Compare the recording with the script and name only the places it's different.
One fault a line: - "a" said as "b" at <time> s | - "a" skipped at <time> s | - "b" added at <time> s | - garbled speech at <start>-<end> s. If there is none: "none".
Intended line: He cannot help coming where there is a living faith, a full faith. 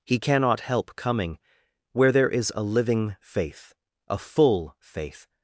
none